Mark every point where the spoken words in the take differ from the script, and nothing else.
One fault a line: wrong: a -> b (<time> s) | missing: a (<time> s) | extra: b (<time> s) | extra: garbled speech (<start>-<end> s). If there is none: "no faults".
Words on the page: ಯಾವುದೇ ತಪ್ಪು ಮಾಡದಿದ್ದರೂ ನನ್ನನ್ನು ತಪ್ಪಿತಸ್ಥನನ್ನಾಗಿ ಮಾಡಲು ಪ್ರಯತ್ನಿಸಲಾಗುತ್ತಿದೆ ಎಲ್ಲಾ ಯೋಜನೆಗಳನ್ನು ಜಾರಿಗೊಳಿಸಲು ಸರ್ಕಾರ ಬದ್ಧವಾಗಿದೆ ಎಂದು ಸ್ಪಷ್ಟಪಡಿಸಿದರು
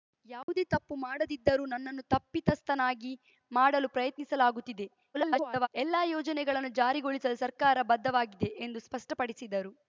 extra: garbled speech (5.1-5.7 s)